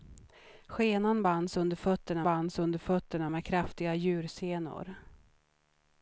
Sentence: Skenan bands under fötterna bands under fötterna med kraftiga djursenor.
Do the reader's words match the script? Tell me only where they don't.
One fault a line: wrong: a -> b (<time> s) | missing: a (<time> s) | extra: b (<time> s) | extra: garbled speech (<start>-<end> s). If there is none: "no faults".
no faults